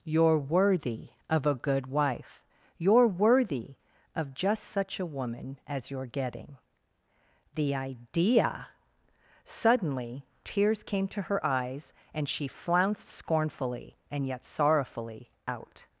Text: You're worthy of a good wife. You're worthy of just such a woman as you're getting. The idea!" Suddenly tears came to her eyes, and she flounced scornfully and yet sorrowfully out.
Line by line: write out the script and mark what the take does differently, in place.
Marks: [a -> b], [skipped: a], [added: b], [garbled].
You're worthy of a good wife. You're worthy of just such a woman as you're getting. The idea!" Suddenly tears came to her eyes, and she flounced scornfully and yet sorrowfully out.